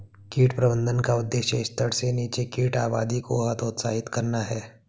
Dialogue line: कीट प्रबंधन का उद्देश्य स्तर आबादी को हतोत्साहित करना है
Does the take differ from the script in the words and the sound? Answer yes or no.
yes